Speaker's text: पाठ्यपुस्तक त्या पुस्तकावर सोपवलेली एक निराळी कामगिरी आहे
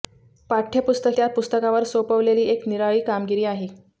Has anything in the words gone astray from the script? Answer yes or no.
no